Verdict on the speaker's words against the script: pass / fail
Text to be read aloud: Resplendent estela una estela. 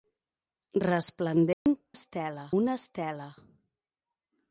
pass